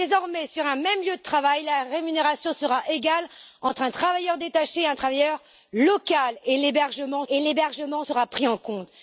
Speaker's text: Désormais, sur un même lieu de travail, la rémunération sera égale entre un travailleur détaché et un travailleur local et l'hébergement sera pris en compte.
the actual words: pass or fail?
fail